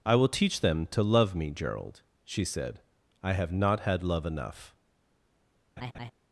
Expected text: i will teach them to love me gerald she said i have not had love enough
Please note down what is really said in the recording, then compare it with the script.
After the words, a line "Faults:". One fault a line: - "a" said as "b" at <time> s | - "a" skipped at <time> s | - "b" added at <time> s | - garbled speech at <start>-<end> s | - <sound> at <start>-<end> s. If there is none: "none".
i will teach them to love me gerald she said i have not had love enough
Faults:
- laugh at 5.8-6.1 s